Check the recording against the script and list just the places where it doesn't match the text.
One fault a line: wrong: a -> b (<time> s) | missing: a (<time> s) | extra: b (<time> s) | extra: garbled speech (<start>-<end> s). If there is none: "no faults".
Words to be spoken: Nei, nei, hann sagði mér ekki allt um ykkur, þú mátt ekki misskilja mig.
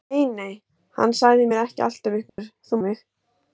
missing: mátt ekki misskilja (2.8 s)